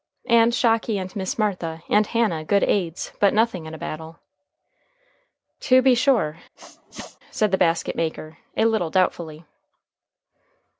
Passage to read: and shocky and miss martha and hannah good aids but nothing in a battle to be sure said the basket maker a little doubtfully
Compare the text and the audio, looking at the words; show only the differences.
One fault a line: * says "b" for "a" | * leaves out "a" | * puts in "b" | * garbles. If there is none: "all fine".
all fine